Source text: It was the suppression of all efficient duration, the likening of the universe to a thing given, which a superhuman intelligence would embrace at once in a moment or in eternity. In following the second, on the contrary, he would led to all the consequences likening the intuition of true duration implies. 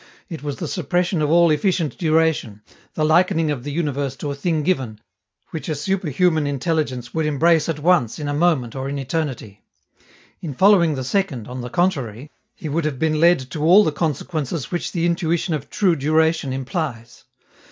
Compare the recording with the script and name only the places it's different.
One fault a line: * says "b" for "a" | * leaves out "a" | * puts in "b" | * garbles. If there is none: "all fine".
* puts in "have been"
* says "which" for "likening"